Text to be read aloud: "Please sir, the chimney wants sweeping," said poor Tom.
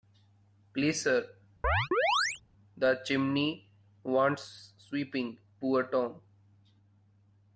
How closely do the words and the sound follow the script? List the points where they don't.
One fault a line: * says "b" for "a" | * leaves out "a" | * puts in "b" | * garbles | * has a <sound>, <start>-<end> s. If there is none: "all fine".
* has a chirp, 1.6-2.4 s
* leaves out "said"